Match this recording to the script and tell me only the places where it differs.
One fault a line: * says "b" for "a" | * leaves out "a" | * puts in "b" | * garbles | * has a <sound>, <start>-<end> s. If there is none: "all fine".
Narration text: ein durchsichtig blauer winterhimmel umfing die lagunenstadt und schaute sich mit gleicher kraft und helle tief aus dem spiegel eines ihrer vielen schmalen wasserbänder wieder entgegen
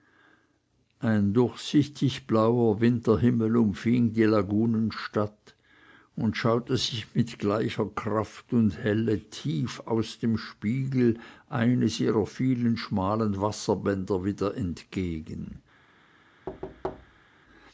* has a thud, 16.5-17.3 s